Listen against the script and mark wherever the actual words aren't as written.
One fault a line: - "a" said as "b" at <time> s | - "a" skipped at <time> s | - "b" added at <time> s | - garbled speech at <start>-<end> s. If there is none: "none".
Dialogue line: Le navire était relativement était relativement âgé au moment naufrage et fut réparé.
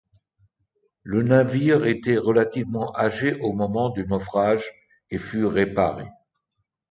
- "était relativement" skipped at 2.9 s
- "du" added at 3.9 s